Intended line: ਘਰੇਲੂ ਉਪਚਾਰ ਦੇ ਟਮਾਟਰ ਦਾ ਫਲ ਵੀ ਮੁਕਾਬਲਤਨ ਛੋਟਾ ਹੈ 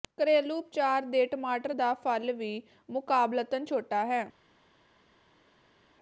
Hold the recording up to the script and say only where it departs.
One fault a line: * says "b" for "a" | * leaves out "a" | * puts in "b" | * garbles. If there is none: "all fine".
all fine